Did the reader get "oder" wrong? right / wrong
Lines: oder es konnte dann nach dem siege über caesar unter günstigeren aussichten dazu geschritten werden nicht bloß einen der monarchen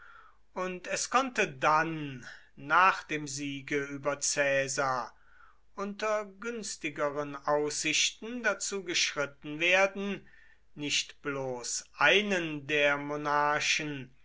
wrong